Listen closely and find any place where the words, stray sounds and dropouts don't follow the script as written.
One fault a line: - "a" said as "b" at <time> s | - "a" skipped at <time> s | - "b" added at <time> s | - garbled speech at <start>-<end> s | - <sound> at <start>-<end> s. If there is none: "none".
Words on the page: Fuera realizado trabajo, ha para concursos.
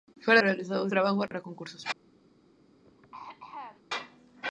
- dropout at 1.3-1.3 s
- throat clearing at 2.8-3.8 s